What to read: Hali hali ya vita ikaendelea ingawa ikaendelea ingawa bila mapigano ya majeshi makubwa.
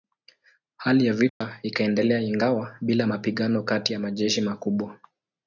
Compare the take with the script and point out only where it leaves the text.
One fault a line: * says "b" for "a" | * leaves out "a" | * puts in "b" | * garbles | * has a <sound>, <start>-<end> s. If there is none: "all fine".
* leaves out "hali"
* has a dropout, 1.3-1.4 s
* leaves out "ikaendelea ingawa"
* puts in "kati"